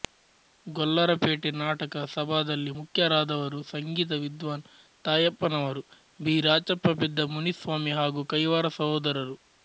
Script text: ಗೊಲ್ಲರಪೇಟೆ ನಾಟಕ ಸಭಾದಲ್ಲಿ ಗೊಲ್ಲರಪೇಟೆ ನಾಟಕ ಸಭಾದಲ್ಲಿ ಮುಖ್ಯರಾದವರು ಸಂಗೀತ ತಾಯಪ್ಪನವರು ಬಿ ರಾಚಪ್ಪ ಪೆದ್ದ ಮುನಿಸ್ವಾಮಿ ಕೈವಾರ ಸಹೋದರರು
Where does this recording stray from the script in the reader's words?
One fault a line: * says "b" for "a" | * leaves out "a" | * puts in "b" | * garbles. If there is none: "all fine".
* leaves out "ಗೊಲ್ಲರಪೇಟೆ ನಾಟಕ ಸಭಾದಲ್ಲಿ"
* puts in "ವಿದ್ವಾನ್"
* puts in "ಹಾಗೂ"